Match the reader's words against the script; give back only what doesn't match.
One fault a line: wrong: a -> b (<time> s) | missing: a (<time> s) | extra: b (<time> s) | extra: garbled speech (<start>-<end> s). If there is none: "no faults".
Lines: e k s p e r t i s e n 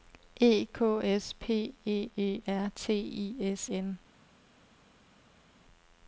extra: e (2.2 s)
missing: e (3.7 s)